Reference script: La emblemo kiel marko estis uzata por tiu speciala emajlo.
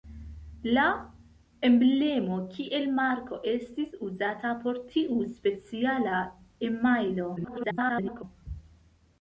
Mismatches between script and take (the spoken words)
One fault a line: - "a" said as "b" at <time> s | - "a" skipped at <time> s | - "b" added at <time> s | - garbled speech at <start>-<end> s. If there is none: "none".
- garbled speech at 7.4-8.2 s